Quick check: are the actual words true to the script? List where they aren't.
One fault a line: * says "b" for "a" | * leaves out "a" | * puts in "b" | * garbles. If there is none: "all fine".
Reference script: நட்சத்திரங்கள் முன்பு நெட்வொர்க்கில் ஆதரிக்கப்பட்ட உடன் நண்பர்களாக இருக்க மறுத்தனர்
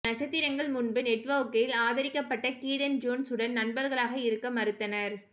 * puts in "கீடன் ஜோன்ஸ்"